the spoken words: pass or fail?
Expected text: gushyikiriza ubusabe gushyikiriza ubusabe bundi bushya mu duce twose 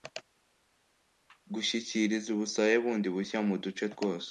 fail